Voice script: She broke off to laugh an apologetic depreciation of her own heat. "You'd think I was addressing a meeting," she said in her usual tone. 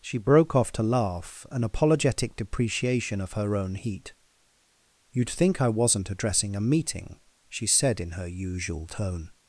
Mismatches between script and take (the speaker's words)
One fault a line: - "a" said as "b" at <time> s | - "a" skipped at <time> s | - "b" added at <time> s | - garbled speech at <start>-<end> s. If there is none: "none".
- "was" said as "wasn't" at 5.7 s